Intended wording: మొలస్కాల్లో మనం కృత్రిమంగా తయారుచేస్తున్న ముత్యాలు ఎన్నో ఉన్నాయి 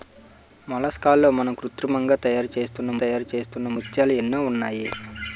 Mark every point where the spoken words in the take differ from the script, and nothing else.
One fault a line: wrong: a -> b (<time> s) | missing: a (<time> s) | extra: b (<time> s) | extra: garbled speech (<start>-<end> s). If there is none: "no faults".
extra: తయారుచేస్తున్న (3.0 s)